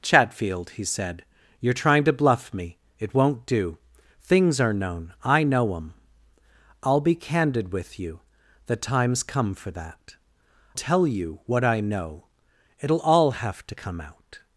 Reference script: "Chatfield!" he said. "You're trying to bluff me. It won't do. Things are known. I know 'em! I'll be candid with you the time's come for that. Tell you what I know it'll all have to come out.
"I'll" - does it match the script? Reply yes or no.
yes